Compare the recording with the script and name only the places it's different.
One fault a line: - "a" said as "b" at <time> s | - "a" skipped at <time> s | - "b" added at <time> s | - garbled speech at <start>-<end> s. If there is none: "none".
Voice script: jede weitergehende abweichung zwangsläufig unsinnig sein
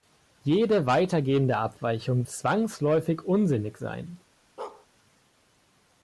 none